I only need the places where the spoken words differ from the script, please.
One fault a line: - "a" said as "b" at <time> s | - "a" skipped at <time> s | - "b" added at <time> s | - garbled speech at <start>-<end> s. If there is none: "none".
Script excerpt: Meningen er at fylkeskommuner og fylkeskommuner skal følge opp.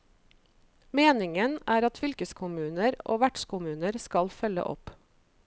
- "fylkeskommuner" said as "vertskommuner" at 3.2 s